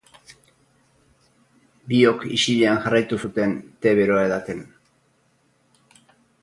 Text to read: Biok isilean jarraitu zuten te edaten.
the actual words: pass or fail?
fail